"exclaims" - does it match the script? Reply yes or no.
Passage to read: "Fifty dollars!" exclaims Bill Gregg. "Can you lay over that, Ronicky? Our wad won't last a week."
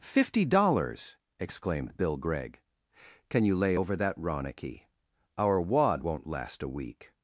no